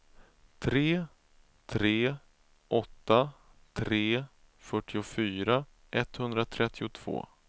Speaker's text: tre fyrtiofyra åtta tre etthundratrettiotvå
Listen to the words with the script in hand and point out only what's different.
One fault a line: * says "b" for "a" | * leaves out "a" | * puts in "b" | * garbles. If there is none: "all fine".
* says "tre" for "fyrtiofyra"
* puts in "fyrtiofyra"